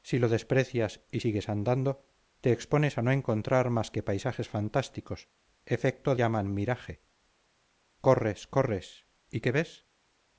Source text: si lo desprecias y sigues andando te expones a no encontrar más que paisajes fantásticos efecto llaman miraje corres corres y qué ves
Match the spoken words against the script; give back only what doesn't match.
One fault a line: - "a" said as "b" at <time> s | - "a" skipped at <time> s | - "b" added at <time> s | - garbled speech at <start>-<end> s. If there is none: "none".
none